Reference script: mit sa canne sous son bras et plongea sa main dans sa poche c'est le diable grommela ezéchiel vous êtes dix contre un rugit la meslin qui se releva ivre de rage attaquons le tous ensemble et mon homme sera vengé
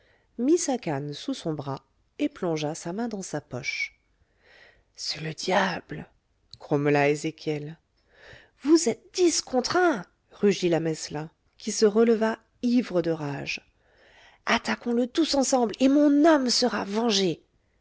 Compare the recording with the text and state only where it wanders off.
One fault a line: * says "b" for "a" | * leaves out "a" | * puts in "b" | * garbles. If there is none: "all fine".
all fine